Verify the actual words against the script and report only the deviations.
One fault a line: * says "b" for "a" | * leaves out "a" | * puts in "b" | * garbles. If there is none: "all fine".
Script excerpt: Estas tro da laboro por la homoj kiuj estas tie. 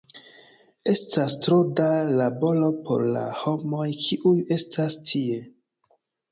all fine